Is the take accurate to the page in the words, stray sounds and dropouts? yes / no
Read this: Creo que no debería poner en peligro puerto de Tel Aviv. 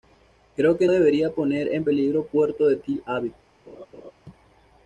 no